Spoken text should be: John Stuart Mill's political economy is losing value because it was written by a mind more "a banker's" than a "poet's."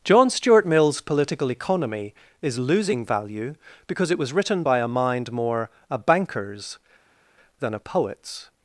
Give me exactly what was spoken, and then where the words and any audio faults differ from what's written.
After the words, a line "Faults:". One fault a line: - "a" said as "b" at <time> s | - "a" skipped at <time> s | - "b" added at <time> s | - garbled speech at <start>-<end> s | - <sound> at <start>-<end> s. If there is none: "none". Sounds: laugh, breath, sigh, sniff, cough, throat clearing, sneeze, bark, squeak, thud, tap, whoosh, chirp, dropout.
John Stuart Mill's political economy is losing value because it was written by a mind more "a banker's" than a "poet's."
Faults:
none